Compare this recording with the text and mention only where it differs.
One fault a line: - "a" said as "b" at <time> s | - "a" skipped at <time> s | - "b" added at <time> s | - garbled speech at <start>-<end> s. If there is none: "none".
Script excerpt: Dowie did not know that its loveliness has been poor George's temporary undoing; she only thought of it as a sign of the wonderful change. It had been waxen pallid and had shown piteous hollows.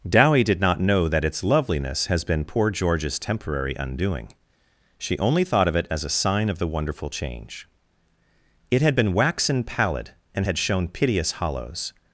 none